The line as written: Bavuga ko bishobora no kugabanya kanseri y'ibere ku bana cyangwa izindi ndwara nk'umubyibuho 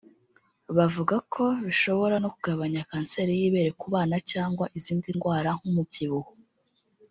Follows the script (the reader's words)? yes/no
yes